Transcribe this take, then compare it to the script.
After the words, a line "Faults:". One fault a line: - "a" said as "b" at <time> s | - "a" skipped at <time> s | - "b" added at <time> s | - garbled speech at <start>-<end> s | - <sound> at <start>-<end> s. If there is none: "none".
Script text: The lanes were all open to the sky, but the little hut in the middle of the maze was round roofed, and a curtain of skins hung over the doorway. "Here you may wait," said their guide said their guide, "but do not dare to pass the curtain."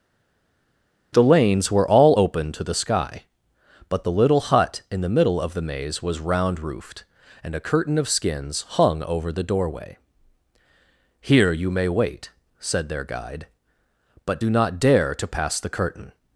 The lanes were all open to the sky, but the little hut in the middle of the maze was round roofed, and a curtain of skins hung over the doorway. "Here you may wait," said their guide, "but do not dare to pass the curtain."
Faults:
- "said their guide" skipped at 13.5 s